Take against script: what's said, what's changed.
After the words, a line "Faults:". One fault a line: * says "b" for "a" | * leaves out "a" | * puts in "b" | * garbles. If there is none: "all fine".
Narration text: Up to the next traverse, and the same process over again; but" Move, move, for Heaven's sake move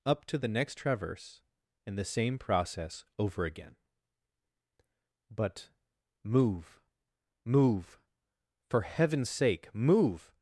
Up to the next traverse, and the same process over again; but" Move, move, for Heaven's sake move
Faults:
all fine